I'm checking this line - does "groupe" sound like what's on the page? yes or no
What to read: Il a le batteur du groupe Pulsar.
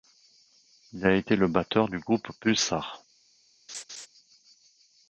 yes